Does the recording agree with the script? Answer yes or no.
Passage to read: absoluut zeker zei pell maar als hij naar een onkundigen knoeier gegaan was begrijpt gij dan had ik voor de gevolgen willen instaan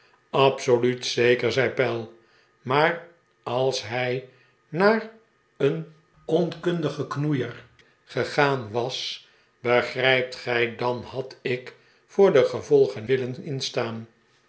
yes